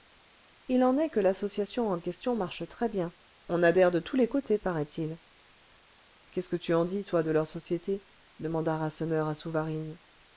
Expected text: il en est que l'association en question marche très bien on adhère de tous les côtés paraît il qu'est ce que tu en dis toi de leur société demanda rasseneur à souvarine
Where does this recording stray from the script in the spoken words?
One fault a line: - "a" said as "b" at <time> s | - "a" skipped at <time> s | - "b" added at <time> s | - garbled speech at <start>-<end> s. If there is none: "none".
none